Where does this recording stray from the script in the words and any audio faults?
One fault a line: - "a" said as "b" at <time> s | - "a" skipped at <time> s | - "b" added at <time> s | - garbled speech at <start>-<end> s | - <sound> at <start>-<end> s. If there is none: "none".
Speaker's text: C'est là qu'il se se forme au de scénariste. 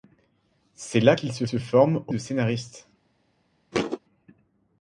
- thud at 3.7-4.0 s